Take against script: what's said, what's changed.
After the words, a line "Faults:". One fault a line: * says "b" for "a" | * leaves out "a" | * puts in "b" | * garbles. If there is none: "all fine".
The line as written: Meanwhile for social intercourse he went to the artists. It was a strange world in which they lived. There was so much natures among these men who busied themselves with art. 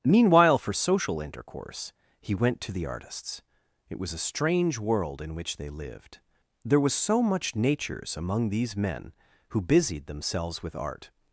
Meanwhile for social intercourse he went to the artists. It was a strange world in which they lived. There was so much natures among these men who busied themselves with art.
Faults:
all fine